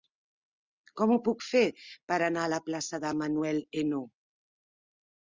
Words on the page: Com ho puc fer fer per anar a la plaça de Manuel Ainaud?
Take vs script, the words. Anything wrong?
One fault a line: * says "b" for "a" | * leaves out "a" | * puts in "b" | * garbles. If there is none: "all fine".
* leaves out "fer"